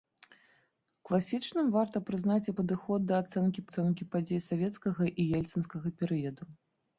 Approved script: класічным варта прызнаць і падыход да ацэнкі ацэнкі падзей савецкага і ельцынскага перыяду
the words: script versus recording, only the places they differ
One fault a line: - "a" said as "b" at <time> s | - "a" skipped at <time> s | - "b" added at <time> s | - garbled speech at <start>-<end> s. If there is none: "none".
none